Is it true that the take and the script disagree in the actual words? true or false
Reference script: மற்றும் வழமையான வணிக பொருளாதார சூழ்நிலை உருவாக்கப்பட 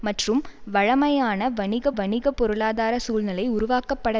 true